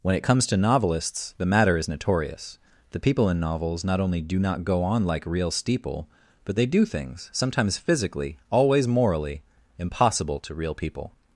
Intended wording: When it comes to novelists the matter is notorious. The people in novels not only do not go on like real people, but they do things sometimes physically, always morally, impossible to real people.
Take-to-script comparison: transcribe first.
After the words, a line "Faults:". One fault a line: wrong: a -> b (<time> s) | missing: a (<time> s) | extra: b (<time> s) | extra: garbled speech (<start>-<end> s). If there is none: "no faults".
When it comes to novelists the matter is notorious. The people in novels not only do not go on like real steeple, but they do things sometimes physically, always morally, impossible to real people.
Faults:
wrong: people -> steeple (5.5 s)